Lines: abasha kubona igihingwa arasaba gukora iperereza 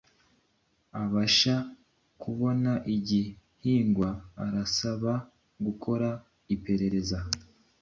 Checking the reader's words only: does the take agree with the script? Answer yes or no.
yes